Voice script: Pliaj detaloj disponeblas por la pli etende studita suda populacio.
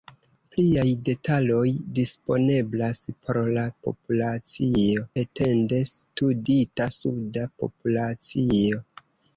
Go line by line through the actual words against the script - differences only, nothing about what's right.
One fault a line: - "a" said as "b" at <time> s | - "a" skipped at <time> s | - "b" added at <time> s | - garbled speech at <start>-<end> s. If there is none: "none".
- "pli" said as "populacio" at 3.9 s